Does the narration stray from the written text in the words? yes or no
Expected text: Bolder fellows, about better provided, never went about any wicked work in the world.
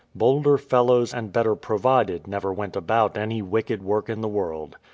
yes